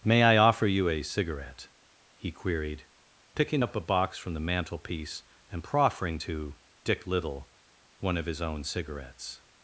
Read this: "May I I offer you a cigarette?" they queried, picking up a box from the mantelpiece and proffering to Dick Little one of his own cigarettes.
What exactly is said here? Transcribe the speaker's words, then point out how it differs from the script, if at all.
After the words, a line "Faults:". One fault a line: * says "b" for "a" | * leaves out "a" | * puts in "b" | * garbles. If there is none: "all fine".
"May I offer you a cigarette?" he queried, picking up a box from the mantelpiece and proffering to Dick Little one of his own cigarettes.
Faults:
* leaves out "I"
* says "he" for "they"